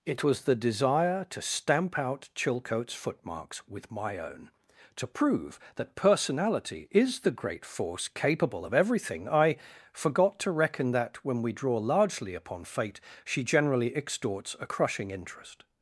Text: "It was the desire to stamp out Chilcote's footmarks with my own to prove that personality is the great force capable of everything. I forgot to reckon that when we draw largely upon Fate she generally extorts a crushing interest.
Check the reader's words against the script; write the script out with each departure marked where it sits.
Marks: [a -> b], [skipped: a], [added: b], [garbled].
"It was the desire to stamp out Chilcote's footmarks with my own to prove that personality is the great force capable of everything. I forgot to reckon that when we draw largely upon Fate she generally extorts a crushing interest.